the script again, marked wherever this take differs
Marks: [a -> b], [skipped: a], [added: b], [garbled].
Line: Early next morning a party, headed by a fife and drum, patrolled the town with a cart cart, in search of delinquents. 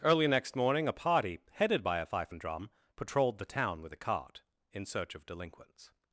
Early next morning a party, headed by a fife and drum, patrolled the town with a cart [skipped: cart,] in search of delinquents.